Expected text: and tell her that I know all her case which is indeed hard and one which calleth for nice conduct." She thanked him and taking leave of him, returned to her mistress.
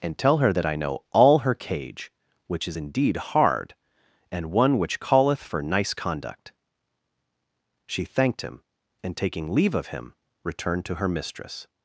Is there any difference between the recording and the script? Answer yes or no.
yes